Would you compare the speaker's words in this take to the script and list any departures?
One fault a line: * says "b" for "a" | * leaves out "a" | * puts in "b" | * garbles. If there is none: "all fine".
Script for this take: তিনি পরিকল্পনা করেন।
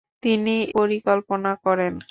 all fine